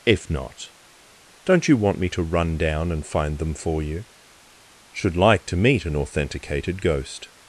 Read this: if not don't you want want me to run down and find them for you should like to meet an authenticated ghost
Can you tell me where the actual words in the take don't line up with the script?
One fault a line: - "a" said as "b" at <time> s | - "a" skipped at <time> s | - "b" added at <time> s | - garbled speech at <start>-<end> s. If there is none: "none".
- "want" skipped at 2.0 s